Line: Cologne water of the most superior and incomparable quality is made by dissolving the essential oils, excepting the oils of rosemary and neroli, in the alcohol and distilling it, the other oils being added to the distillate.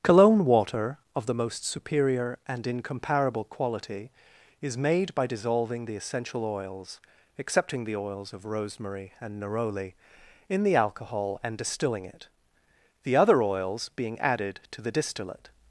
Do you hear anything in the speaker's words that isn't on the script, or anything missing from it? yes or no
no